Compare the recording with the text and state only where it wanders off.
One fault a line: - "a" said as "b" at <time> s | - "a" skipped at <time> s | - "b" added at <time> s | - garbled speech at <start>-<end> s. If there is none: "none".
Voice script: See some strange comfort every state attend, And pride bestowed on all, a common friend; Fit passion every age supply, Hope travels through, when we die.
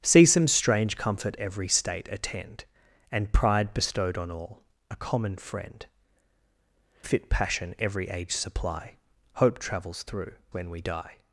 none